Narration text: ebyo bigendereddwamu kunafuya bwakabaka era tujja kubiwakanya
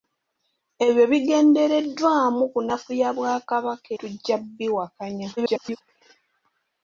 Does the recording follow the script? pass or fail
fail